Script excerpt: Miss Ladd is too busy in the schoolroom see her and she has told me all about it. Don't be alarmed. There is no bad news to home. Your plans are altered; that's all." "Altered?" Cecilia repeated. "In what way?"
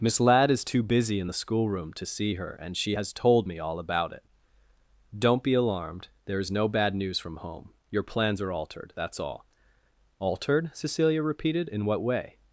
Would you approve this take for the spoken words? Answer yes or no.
no